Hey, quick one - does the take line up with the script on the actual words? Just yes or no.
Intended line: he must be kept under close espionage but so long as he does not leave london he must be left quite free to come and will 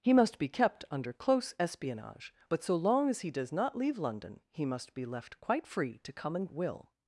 yes